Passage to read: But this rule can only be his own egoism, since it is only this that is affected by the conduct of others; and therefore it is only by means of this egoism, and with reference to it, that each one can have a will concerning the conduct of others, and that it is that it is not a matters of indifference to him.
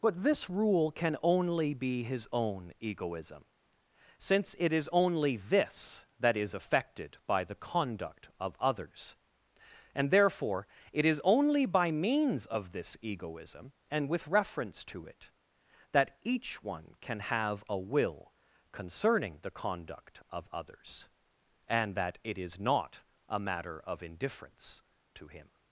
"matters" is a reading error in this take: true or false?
true